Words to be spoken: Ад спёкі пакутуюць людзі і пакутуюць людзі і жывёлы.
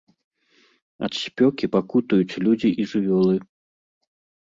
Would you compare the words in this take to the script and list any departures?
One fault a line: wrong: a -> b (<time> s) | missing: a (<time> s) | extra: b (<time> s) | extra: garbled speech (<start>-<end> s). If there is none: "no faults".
missing: пакутуюць людзі і (2.9 s)